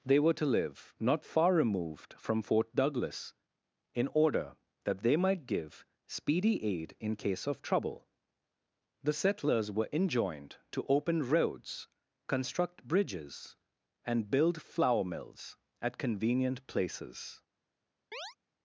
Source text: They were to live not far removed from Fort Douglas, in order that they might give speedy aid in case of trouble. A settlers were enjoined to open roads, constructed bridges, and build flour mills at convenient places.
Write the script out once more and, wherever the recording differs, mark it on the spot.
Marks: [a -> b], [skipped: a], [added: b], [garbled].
They were to live not far removed from Fort Douglas, in order that they might give speedy aid in case of trouble. [A -> The] settlers were enjoined to open roads, [constructed -> construct] bridges, and build flour mills at convenient places.